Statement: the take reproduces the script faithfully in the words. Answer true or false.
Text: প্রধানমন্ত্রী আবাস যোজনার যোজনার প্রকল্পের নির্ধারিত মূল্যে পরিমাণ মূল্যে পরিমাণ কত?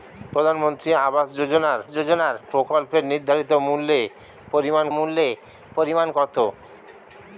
true